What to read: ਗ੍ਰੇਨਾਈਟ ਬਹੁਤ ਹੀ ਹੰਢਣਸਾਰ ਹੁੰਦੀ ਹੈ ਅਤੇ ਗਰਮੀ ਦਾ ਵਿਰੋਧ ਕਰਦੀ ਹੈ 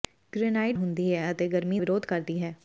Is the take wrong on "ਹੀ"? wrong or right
wrong